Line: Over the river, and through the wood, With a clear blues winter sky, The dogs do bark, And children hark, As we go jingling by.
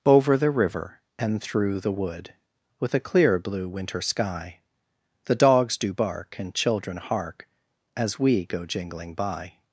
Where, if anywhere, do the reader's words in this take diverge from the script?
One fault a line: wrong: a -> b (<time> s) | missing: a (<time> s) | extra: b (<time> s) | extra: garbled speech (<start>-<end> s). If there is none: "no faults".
wrong: blues -> blue (3.4 s)